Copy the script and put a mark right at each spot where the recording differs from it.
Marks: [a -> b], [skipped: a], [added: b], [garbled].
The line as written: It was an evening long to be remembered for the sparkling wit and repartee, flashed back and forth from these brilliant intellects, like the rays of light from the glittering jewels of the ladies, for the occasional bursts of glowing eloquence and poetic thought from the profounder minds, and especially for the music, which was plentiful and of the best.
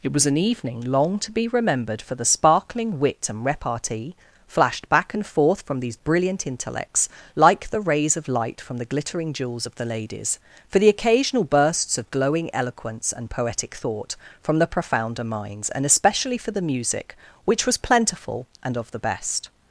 It was an evening long to be remembered for the sparkling wit and repartee, flashed back and forth from these brilliant intellects, like the rays of light from the glittering jewels of the ladies, for the occasional bursts of glowing eloquence and poetic thought from the profounder minds, and especially for the music, which was plentiful and of the best.